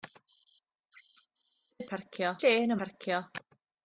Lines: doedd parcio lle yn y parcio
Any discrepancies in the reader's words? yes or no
no